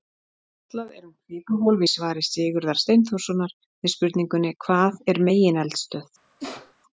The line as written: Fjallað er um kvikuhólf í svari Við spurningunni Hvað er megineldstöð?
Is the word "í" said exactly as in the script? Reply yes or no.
yes